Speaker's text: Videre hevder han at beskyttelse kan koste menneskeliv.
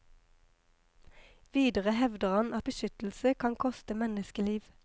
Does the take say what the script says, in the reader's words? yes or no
yes